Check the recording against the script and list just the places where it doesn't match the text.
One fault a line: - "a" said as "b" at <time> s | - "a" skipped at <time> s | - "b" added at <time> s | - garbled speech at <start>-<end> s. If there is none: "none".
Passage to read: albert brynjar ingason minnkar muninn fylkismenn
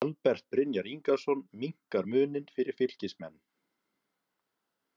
- "fyrir" added at 2.5 s